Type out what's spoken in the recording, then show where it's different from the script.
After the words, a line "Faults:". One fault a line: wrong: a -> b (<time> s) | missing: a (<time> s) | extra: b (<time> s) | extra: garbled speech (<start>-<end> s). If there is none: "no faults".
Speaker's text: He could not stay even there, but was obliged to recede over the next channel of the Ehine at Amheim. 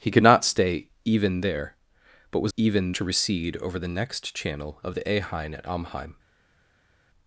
He could not stay even there, but was even to recede over the next channel of the Ehine at Amheim.
Faults:
wrong: obliged -> even (2.6 s)